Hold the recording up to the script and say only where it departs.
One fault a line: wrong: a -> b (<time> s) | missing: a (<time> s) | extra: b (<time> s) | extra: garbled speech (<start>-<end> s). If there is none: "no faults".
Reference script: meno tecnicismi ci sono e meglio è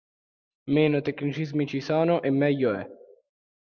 no faults